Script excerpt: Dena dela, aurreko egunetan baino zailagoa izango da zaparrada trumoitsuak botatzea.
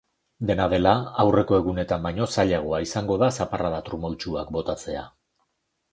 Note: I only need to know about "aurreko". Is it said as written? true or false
true